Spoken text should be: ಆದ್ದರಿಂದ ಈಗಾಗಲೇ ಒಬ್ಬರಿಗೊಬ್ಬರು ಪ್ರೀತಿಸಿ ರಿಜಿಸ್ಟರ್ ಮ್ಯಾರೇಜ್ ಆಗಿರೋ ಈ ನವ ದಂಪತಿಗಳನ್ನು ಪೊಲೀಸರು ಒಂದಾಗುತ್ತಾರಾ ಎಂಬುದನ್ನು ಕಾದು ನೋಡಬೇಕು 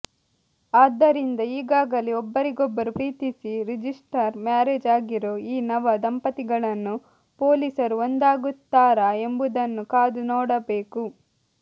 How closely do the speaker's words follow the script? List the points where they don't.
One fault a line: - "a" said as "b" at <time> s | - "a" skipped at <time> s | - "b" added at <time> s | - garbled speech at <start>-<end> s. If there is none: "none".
none